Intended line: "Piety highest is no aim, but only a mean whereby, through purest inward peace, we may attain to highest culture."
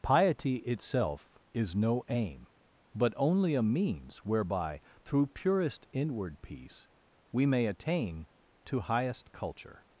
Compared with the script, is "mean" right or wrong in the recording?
wrong